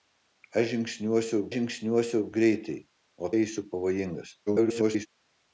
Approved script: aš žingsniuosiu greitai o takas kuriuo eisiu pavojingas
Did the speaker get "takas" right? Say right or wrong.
wrong